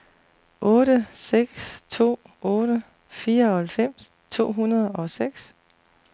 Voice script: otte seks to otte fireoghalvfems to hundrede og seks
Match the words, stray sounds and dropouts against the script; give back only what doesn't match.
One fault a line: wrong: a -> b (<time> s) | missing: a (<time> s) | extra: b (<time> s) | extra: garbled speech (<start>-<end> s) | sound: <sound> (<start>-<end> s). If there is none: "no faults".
no faults